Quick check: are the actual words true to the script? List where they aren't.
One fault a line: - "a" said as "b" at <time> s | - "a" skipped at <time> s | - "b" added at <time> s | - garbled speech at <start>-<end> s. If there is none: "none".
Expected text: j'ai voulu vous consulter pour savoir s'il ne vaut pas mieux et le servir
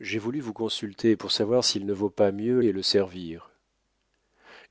none